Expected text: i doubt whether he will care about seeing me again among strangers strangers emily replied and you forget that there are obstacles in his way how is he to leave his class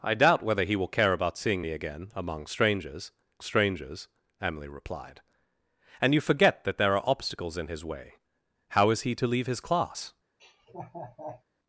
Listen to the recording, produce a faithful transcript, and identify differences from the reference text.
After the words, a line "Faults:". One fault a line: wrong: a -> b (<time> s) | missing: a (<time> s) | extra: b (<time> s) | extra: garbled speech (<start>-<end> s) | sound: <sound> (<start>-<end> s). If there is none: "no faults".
i doubt whether he will care about seeing me again among strangers strangers emily replied and you forget that there are obstacles in his way how is he to leave his class
Faults:
sound: laugh (10.4-11.4 s)